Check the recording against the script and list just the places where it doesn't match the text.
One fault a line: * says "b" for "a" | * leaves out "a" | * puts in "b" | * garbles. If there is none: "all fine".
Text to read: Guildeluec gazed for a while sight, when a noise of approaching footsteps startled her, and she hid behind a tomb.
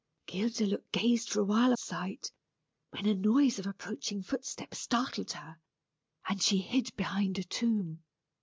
all fine